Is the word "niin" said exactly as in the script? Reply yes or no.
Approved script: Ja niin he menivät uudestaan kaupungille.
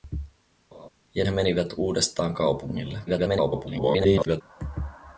no